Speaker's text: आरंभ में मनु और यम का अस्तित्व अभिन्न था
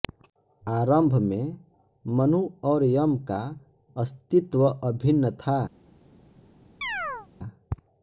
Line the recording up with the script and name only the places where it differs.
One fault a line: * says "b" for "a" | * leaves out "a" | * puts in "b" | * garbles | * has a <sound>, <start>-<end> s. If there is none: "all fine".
* has a chirp, 6.8-7.3 s